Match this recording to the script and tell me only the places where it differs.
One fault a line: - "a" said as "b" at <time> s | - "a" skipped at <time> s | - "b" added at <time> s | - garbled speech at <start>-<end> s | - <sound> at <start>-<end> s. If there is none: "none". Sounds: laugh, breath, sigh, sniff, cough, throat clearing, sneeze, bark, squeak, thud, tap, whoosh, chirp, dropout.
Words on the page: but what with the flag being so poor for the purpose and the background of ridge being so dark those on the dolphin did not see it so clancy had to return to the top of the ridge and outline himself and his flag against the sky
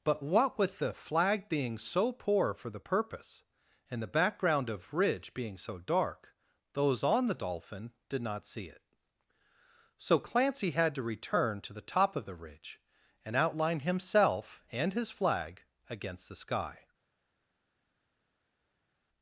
none